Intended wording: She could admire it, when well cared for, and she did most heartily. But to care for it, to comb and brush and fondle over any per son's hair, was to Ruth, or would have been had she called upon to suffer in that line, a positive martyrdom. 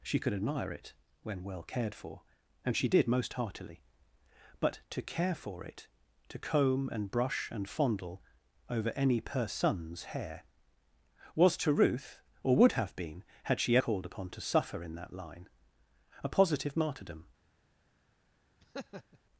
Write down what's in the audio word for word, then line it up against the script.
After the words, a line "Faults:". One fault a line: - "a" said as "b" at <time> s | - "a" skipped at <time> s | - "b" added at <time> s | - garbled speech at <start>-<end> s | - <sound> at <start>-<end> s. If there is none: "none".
She could admire it, when well cared for, and she did most heartily. But to care for it, to comb and brush and fondle over any per son's hair, was to Ruth, or would have been had she called upon to suffer in that line, a positive martyrdom.
Faults:
- laugh at 18.6-19.2 s